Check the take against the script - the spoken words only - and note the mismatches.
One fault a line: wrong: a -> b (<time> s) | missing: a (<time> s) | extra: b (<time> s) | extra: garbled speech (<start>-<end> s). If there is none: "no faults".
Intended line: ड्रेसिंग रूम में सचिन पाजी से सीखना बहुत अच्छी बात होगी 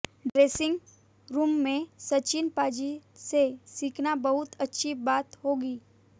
no faults